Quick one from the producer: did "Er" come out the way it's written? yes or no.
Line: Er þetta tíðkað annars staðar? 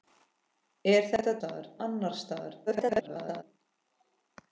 yes